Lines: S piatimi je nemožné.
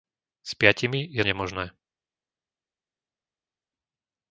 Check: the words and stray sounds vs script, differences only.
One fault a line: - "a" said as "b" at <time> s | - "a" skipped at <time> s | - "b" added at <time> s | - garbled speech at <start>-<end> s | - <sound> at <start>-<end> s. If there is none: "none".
none